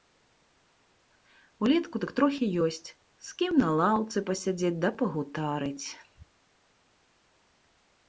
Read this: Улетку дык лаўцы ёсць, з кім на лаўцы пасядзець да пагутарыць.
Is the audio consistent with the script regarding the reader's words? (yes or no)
no